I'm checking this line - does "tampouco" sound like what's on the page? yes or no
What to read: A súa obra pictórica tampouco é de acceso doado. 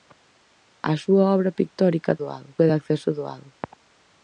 no